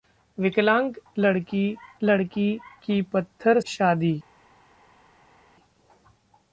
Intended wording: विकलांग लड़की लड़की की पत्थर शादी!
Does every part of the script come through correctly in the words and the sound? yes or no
yes